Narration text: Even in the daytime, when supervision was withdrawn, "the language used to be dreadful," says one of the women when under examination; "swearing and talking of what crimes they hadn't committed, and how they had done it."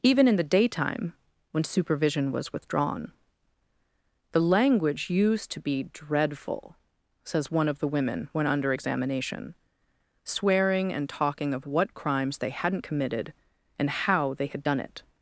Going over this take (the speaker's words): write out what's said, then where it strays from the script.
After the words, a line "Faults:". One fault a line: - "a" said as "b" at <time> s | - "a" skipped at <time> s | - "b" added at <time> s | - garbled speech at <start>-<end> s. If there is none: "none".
Even in the daytime, when supervision was withdrawn, "the language used to be dreadful," says one of the women when under examination; "swearing and talking of what crimes they hadn't committed, and how they had done it."
Faults:
none